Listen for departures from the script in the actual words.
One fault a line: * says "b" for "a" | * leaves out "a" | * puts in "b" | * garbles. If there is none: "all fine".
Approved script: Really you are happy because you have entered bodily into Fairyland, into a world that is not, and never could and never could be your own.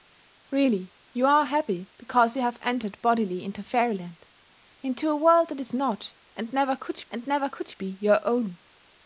all fine